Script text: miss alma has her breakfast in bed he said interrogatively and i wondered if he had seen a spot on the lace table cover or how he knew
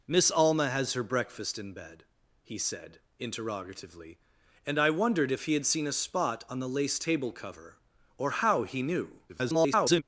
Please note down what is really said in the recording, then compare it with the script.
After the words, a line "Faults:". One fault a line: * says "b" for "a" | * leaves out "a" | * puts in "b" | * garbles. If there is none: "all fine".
miss alma has her breakfast in bed he said interrogatively and i wondered if he had seen a spot on the lace table cover or how he knew [garbled]
Faults:
* garbles